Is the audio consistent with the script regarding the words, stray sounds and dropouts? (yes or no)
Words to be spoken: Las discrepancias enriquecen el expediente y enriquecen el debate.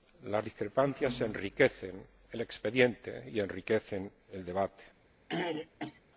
no